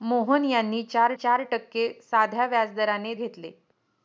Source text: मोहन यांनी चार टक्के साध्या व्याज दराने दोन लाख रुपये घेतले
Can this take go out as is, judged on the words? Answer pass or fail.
fail